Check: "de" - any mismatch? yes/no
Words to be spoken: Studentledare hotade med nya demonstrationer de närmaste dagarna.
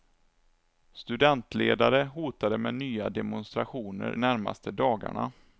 yes